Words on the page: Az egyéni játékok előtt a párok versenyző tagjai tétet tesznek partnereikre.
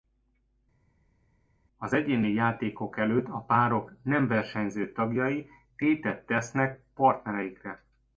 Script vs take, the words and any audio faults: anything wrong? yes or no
yes